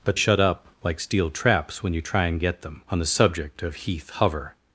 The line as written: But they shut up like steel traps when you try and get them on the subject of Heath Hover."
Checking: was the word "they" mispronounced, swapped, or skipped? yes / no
yes